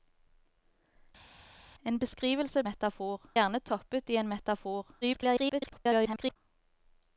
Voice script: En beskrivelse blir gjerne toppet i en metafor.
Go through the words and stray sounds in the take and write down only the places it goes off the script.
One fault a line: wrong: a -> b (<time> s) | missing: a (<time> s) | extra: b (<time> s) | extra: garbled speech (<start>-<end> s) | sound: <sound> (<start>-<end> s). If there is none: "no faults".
wrong: blir -> metafor (2.6 s)
extra: garbled speech (5.0-6.4 s)